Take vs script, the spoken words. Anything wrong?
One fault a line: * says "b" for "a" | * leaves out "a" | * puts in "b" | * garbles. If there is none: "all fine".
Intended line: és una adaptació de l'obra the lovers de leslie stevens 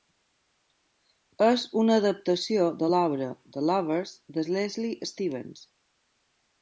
all fine